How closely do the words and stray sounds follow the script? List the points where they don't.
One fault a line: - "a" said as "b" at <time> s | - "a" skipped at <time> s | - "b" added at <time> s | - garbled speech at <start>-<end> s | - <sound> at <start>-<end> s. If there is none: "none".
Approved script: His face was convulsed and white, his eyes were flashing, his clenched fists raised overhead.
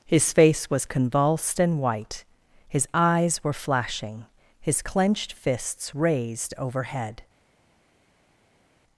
none